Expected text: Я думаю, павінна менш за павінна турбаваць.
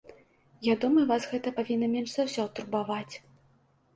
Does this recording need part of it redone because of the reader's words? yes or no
yes